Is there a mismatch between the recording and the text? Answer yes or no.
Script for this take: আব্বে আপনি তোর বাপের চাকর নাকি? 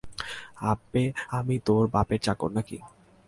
yes